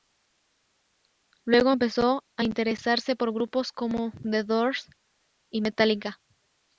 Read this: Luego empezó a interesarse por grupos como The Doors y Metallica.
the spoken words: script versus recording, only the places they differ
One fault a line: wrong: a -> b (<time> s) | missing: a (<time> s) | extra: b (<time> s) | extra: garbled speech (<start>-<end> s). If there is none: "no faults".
no faults